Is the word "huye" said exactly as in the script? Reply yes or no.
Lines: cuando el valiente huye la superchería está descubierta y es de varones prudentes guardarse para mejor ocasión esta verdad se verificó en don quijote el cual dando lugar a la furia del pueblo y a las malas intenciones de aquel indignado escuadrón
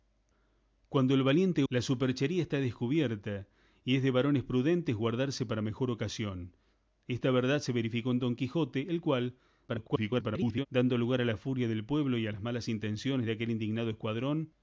no